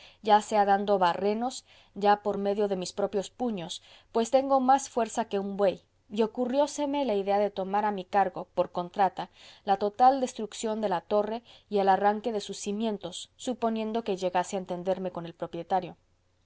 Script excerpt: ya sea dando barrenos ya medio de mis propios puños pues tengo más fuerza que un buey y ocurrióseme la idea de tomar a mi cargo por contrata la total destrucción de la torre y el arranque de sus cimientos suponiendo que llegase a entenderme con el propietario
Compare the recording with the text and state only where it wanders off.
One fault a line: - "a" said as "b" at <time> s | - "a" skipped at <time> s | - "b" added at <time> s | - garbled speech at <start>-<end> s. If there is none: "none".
- "por" added at 2.2 s